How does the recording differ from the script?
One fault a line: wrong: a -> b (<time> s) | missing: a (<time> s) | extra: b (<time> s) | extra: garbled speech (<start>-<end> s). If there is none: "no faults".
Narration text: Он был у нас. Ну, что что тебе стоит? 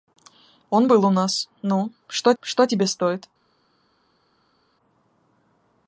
no faults